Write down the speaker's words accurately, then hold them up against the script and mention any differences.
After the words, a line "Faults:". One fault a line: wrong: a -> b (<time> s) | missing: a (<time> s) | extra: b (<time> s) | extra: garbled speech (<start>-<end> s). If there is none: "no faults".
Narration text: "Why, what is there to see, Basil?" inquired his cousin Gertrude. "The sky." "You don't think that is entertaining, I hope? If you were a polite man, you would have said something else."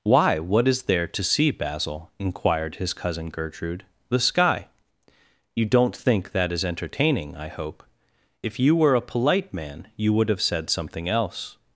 "Why, what is there to see, Basil?" inquired his cousin Gertrude. "The sky." "You don't think that is entertaining, I hope? If you were a polite man, you would have said something else."
Faults:
no faults